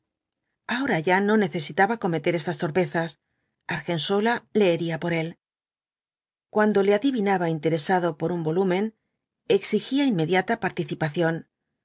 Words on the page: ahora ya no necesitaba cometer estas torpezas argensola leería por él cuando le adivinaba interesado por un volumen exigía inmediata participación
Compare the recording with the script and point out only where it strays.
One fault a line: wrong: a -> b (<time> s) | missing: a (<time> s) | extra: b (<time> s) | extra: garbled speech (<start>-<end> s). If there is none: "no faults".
no faults